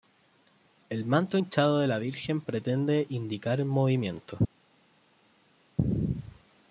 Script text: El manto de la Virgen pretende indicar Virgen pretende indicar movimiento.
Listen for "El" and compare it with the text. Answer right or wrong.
right